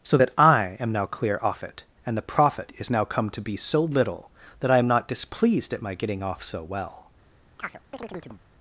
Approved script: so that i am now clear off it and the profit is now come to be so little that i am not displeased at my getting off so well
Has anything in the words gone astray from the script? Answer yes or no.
no